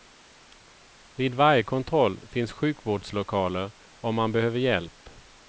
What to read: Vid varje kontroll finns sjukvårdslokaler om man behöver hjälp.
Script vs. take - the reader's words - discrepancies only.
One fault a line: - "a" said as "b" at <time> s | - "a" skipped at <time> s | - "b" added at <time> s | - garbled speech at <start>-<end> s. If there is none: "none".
none